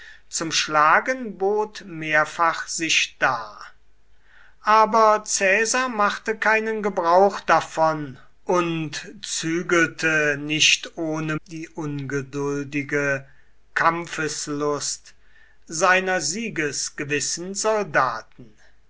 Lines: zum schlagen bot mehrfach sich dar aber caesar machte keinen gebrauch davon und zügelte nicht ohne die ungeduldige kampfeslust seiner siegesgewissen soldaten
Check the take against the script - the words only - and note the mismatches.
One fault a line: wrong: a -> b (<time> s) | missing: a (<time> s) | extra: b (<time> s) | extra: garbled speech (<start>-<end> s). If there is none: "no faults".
no faults